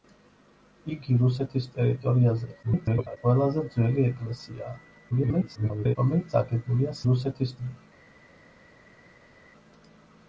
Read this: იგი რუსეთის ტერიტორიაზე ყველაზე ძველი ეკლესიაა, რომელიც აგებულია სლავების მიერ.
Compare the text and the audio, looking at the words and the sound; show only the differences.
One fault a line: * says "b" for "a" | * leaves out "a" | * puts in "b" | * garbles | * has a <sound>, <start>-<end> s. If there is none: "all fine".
* garbles
* garbles
* says "რუსეთის" for "სლავების"